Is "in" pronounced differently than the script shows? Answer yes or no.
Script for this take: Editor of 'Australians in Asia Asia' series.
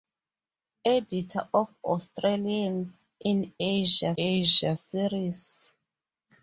no